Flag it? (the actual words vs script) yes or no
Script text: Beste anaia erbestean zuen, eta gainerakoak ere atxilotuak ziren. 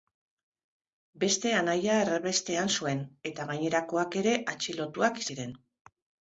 no